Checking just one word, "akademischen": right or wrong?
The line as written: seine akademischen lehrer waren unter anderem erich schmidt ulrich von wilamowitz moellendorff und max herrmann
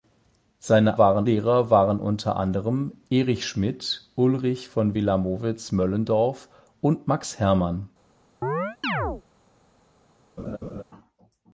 wrong